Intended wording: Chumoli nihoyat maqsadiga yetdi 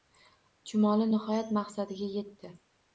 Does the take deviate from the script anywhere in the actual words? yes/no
no